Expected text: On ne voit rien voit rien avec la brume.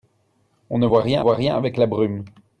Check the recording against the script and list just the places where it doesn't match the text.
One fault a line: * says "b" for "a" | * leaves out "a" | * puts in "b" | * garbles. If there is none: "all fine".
all fine